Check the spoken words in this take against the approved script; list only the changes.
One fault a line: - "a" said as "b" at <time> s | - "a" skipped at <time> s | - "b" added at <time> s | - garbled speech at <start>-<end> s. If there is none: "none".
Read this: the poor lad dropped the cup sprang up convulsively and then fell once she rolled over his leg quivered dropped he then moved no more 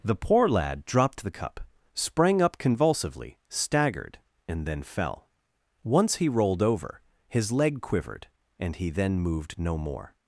- "staggered" added at 3.5 s
- "she" said as "he" at 6.2 s
- "dropped" said as "and" at 8.6 s